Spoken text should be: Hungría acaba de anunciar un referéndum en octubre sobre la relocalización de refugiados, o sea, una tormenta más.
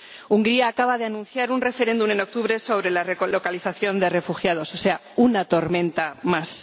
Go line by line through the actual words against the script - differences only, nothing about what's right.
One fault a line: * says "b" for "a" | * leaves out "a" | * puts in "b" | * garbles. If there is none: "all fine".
all fine